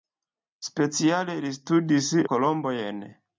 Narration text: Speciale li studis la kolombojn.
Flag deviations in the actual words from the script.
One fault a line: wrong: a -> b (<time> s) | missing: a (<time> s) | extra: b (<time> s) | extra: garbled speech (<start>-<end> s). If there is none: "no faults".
missing: la (2.1 s)